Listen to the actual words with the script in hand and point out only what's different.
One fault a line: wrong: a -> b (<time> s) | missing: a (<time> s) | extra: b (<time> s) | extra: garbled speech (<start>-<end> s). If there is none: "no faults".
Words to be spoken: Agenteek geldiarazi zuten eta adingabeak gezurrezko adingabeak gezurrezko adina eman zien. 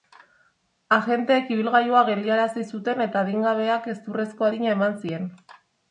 extra: ibilgailua (1.6 s)
missing: adingabeak gezurrezko (4.5 s)